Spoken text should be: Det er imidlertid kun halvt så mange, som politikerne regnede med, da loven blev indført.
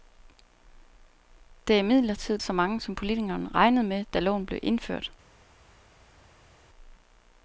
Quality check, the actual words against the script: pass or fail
fail